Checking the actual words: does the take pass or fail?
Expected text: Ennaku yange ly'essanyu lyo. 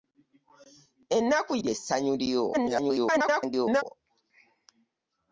fail